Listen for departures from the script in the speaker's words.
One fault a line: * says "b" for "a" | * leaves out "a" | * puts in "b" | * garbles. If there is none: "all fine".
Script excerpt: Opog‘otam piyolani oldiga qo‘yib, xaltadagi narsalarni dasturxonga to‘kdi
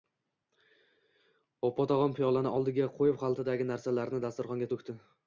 all fine